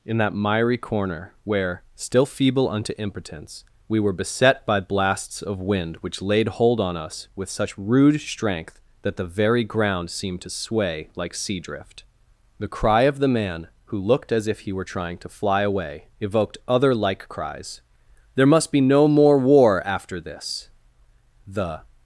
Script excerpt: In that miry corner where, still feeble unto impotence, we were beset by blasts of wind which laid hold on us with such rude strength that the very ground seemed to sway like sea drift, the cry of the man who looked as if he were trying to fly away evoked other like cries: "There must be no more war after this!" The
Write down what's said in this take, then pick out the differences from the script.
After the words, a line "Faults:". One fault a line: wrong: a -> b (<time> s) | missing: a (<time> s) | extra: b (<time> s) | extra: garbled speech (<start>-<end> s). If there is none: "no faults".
In that miry corner where, still feeble unto impotence, we were beset by blasts of wind which laid hold on us with such rude strength that the very ground seemed to sway like sea drift, the cry of the man who looked as if he were trying to fly away evoked other like cries: "There must be no more war after this!" The
Faults:
no faults